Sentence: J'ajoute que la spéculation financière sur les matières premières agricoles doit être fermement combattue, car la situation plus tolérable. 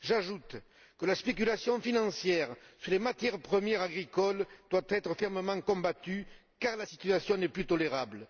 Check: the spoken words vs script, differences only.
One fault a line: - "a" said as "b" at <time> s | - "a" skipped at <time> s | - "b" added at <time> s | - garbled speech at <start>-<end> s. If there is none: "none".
- "n'est" added at 7.4 s